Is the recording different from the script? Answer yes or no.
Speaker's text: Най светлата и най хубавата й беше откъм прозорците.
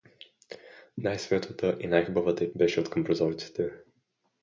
no